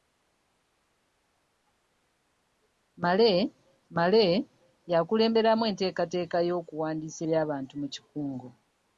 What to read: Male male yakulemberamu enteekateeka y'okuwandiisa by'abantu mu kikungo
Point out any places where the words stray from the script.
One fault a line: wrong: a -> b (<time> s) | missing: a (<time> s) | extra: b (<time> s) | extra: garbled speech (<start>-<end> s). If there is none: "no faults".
no faults